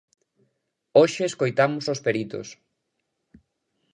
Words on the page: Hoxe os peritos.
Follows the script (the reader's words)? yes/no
no